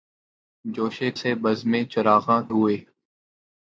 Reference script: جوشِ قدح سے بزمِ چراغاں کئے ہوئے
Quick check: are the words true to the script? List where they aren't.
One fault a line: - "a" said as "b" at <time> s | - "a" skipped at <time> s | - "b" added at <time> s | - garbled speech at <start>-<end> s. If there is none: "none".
- "قدح" skipped at 1.0 s
- "کئے" skipped at 2.4 s